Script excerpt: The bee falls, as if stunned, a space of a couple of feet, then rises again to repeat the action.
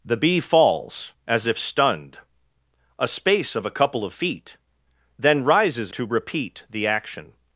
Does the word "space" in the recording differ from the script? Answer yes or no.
no